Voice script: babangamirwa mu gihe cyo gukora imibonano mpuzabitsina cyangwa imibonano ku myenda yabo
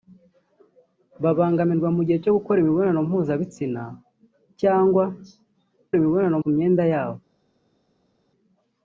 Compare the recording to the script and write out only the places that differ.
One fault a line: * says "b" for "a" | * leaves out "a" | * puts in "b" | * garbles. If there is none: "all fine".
all fine